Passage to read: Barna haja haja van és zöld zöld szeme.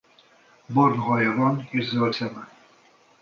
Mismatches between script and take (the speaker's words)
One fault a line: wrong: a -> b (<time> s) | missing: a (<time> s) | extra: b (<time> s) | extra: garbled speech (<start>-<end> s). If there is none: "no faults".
missing: haja (1.4 s)
missing: zöld (2.2 s)